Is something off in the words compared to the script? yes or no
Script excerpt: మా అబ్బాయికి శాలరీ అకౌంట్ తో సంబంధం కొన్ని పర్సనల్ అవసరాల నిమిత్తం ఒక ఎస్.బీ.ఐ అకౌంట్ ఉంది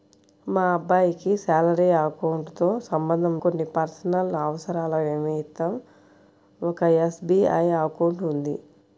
no